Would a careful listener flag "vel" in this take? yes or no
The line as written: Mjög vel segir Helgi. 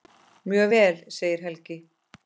no